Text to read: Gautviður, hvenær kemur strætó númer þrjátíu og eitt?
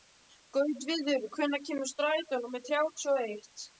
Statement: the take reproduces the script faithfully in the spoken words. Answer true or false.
true